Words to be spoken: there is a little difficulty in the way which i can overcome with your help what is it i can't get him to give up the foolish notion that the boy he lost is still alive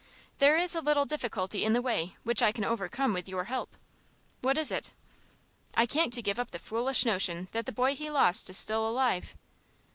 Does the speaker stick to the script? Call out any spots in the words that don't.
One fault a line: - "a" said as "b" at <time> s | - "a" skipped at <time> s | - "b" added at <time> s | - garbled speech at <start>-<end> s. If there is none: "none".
- "get him" skipped at 6.1 s